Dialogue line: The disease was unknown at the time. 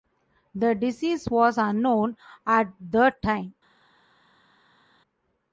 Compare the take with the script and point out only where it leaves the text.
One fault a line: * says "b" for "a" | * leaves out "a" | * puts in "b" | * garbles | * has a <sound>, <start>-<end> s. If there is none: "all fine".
all fine